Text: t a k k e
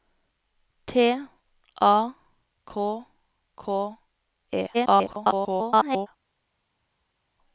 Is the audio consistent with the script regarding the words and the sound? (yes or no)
no